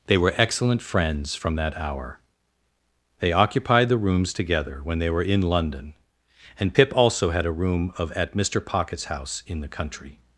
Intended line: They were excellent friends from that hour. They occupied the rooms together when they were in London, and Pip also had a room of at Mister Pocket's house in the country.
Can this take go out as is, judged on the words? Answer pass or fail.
pass